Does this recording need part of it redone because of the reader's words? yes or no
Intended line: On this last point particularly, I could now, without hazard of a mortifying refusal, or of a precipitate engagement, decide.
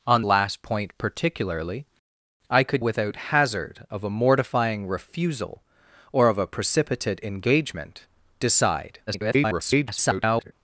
yes